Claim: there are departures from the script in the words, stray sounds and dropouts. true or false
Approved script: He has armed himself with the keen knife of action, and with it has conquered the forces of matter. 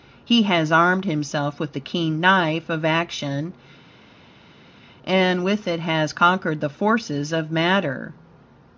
false